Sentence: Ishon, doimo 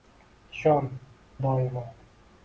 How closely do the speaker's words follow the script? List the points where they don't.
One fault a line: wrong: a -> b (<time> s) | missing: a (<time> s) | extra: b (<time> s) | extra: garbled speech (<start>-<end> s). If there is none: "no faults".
no faults